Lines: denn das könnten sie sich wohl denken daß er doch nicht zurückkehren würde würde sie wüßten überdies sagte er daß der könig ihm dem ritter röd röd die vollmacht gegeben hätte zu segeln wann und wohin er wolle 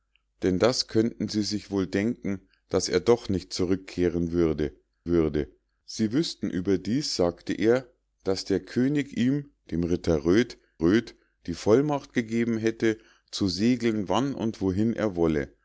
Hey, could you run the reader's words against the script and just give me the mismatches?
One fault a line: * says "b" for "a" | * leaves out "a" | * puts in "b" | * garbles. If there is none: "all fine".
all fine